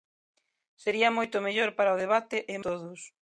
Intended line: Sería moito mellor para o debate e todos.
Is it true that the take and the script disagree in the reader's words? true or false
false